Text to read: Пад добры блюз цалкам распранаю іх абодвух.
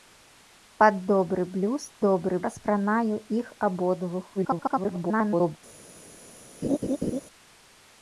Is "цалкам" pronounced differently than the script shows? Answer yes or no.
yes